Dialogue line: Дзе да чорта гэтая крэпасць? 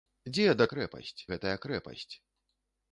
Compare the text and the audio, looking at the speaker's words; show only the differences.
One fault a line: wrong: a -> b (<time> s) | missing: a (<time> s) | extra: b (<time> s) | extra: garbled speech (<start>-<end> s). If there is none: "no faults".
wrong: чорта -> крэпасць (0.7 s)